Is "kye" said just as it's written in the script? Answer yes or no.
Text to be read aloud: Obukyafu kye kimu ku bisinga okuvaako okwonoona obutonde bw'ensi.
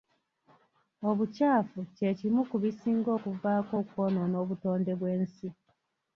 yes